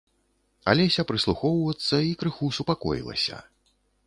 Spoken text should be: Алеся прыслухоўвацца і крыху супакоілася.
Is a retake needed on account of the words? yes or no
no